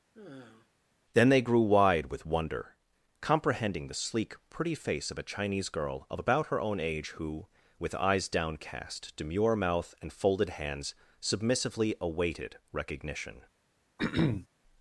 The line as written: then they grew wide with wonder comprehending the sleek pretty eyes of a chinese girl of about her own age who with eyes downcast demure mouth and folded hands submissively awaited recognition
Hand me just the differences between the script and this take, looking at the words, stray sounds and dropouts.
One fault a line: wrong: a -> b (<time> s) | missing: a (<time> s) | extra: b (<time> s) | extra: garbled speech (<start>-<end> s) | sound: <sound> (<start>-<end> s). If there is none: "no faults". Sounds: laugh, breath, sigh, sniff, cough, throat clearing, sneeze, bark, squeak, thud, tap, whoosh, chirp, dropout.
sound: sigh (0.1-0.7 s)
wrong: eyes -> face (4.7 s)
sound: throat clearing (14.0-14.5 s)